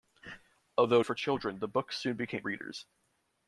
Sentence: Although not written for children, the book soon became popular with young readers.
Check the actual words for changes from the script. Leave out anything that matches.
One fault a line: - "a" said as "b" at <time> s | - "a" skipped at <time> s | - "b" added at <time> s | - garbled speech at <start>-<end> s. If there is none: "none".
- "not written" skipped at 1.0 s
- "popular with young" skipped at 2.4 s